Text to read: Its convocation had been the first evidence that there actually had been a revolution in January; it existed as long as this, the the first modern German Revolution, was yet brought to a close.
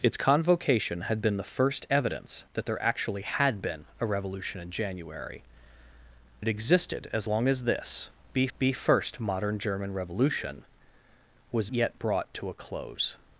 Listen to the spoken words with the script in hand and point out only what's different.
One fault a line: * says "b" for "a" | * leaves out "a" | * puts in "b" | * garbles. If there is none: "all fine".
all fine